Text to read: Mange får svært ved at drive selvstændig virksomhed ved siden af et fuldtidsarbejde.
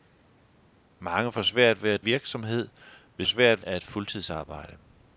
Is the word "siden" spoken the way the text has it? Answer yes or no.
no